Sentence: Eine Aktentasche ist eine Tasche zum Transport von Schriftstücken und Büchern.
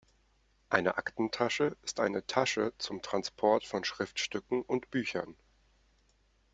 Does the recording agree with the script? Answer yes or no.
yes